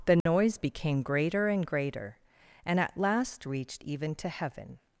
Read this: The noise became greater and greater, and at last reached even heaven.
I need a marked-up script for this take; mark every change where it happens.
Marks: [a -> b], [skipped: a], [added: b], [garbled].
The noise became greater and greater, and at last reached even [added: to] heaven.